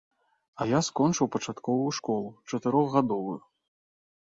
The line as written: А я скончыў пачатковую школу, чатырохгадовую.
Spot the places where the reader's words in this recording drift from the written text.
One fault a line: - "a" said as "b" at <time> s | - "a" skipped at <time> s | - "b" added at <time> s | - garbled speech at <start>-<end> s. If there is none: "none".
none